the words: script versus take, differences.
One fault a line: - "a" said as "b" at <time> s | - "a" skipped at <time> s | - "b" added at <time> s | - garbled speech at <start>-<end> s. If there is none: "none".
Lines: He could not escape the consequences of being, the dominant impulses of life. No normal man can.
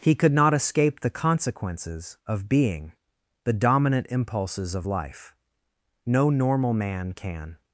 none